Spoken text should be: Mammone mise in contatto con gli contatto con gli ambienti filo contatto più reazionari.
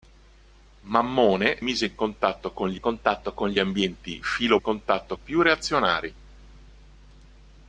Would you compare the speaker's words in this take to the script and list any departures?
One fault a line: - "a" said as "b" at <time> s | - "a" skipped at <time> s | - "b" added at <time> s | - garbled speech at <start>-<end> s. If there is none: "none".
none